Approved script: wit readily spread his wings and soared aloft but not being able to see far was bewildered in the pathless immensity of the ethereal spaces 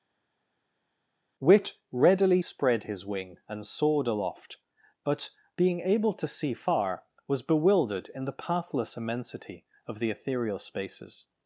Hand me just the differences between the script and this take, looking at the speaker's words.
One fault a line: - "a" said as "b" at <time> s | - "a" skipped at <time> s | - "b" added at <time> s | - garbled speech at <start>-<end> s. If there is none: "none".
- "wings" said as "wing" at 3.1 s
- "not" skipped at 5.3 s